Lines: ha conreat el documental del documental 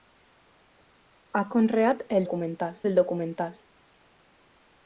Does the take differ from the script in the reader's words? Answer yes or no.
no